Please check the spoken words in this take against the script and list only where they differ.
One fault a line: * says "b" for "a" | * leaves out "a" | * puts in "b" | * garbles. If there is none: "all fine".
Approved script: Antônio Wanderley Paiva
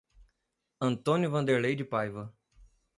* puts in "de"